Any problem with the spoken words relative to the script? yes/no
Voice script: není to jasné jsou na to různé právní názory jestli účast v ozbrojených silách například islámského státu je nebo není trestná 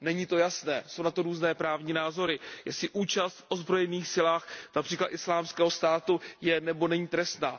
no